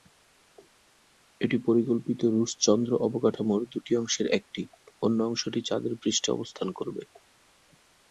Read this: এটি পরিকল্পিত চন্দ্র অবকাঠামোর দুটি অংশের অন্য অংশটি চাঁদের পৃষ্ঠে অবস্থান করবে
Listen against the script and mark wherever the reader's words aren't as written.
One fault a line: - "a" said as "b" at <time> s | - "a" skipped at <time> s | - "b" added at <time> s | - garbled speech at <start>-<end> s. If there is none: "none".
- "রুশ" added at 2.3 s
- "একটি" added at 4.4 s